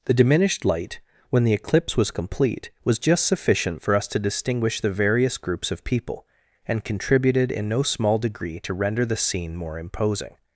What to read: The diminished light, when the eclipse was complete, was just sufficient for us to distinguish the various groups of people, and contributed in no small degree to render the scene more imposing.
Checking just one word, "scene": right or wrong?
right